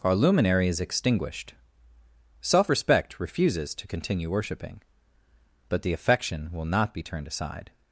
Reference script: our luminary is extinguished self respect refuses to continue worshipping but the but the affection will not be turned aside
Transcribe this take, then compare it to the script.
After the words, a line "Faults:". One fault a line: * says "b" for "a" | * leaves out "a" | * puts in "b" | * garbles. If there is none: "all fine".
our luminary is extinguished self respect refuses to continue worshipping but the affection will not be turned aside
Faults:
* leaves out "but the"